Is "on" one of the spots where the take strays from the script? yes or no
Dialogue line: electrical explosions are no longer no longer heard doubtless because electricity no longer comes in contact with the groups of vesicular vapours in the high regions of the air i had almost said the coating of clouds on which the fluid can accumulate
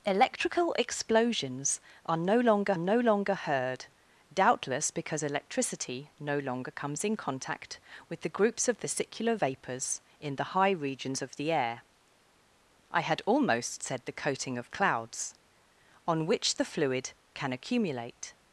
no